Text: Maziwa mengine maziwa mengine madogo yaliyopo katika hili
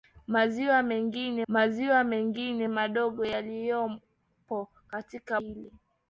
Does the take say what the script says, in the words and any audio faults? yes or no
yes